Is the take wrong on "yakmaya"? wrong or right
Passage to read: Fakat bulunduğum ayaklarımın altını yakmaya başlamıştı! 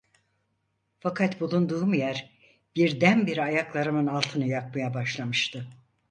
right